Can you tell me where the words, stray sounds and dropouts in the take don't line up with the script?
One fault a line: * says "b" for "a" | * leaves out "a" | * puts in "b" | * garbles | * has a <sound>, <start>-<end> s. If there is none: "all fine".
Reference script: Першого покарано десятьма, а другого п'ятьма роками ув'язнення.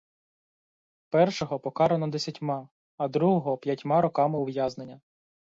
all fine